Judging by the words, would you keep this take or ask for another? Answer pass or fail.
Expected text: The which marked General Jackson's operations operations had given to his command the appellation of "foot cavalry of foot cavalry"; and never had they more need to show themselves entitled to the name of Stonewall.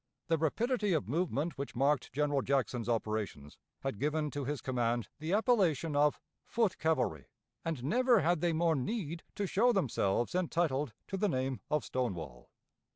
fail